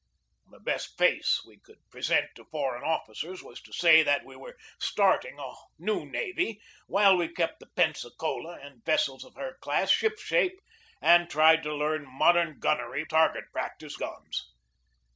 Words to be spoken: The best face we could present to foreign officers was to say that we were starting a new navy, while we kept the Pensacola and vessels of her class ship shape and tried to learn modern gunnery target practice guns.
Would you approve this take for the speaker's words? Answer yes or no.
yes